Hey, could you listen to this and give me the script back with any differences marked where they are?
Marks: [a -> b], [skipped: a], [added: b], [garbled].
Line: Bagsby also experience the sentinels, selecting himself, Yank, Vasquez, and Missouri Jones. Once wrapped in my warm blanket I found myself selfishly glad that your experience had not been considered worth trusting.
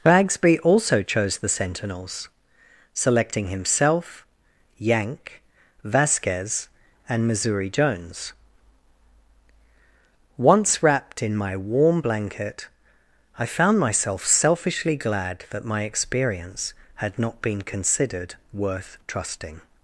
Bagsby also [experience -> chose] the sentinels, selecting himself, Yank, Vasquez, and Missouri Jones. Once wrapped in my warm blanket I found myself selfishly glad that [your -> my] experience had not been considered worth trusting.